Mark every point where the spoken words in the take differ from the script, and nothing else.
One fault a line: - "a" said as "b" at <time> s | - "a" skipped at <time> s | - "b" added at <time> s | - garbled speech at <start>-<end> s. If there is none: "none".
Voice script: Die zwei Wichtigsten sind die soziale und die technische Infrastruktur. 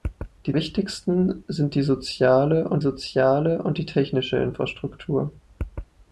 - "zwei" skipped at 0.6 s
- "soziale und" added at 2.8 s